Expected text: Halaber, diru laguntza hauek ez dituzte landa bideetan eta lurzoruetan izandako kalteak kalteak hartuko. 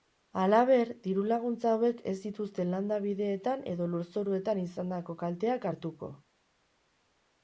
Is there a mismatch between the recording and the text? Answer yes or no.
yes